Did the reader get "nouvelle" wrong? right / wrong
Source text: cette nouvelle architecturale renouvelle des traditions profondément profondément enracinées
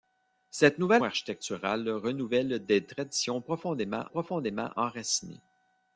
right